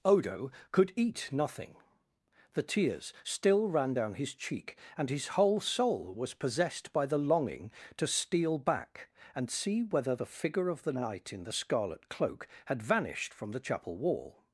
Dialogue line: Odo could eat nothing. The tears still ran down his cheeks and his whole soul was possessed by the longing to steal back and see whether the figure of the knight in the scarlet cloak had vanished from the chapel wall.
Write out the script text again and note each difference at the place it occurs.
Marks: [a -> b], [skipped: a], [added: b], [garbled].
Odo could eat nothing. The tears still ran down his [cheeks -> cheek] and his whole soul was possessed by the longing to steal back and see whether the figure of the knight in the scarlet cloak had vanished from the chapel wall.